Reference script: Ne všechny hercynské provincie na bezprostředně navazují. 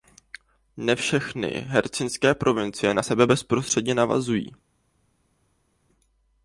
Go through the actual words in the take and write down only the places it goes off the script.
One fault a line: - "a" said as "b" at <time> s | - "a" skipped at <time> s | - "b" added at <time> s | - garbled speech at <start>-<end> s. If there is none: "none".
- "sebe" added at 3.0 s